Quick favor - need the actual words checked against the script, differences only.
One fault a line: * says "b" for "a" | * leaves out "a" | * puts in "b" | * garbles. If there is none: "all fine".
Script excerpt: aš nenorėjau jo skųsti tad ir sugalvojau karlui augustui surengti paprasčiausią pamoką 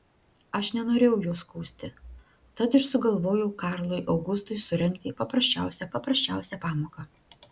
* puts in "paprasčiausią"